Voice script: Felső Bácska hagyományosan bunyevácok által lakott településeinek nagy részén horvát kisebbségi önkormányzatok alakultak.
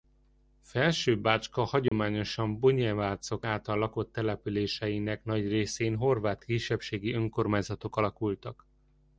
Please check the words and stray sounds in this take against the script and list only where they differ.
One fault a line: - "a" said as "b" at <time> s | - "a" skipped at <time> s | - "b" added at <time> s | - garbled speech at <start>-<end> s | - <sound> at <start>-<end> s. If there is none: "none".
- dropout at 1.9-1.9 s